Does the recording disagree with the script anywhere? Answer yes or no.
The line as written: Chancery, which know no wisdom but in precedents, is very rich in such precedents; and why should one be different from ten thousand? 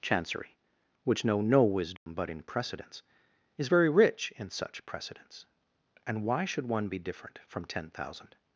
no